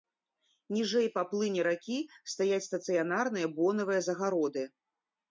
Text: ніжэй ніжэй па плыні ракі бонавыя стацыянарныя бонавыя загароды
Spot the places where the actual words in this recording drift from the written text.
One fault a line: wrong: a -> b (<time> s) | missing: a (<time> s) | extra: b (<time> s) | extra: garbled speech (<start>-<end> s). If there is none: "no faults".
missing: ніжэй (1.1 s)
wrong: бонавыя -> стаяць (2.3 s)